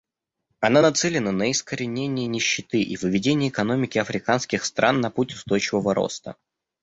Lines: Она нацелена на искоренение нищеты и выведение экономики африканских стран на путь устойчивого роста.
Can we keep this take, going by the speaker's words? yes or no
yes